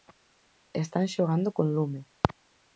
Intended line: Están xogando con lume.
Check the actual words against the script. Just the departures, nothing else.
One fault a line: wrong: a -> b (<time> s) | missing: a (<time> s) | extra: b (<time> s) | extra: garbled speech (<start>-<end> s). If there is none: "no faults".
no faults